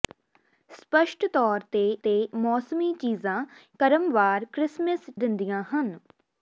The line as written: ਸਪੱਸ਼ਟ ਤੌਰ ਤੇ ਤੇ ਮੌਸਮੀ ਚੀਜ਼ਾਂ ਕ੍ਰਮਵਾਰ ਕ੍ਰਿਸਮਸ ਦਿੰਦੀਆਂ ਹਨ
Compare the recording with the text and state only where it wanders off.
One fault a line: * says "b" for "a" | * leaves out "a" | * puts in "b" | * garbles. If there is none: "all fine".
all fine